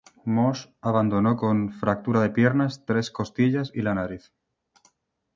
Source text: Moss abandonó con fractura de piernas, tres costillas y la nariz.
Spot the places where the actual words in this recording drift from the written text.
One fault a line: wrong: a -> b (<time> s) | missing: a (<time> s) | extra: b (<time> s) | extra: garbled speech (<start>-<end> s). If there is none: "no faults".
no faults